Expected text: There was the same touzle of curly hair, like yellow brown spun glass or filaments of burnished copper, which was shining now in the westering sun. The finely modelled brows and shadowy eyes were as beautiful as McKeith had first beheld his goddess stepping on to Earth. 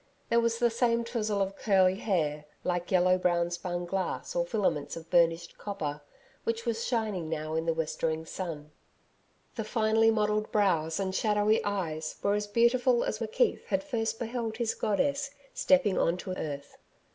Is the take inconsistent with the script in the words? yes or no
no